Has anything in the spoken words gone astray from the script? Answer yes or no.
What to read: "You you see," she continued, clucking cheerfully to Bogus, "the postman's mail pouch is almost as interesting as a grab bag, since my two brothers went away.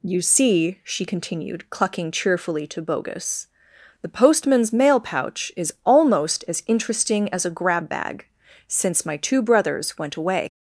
yes